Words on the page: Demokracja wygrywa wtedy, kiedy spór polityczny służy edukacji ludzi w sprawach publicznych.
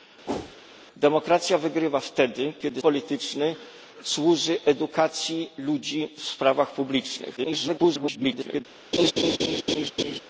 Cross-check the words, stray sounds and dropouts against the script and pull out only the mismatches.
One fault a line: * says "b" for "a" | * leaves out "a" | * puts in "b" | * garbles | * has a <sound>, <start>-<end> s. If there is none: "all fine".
* has a whoosh, 0.3-0.6 s
* leaves out "spór"
* garbles
* has a laugh, 8.9-10.2 s